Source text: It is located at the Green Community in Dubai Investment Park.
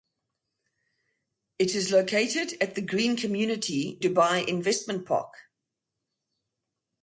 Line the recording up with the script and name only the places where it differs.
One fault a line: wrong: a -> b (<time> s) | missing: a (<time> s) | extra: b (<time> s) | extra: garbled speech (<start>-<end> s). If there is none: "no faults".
missing: in (4.0 s)